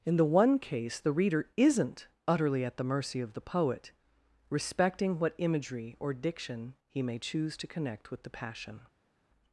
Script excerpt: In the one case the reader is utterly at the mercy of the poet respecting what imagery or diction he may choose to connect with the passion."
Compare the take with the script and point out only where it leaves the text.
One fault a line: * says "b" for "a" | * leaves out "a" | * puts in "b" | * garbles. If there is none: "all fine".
* says "isn't" for "is"